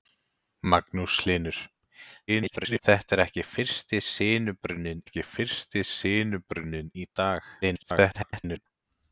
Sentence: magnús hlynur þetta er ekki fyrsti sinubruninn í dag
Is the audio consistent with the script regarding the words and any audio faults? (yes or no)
no